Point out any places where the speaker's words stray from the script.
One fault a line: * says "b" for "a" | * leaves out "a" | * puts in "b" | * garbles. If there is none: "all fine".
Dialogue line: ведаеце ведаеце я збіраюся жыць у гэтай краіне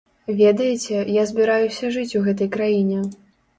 * leaves out "ведаеце"